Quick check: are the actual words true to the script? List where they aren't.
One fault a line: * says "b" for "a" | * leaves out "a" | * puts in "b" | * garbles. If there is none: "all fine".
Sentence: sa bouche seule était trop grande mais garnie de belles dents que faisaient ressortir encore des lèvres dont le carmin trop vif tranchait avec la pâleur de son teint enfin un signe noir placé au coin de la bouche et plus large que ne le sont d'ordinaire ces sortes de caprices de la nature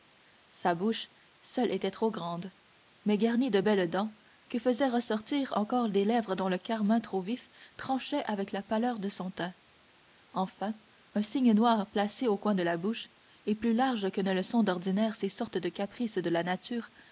all fine